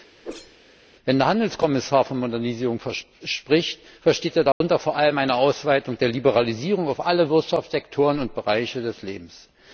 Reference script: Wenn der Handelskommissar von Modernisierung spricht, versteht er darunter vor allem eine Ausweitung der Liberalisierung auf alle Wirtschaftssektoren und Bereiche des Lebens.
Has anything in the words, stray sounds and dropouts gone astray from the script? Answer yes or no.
yes